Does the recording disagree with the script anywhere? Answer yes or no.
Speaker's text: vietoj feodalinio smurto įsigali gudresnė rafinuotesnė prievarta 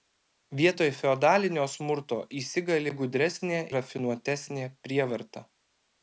no